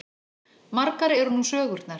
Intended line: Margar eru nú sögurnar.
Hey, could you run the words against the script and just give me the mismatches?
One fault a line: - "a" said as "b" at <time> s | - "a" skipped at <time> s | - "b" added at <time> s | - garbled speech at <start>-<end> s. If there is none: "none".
none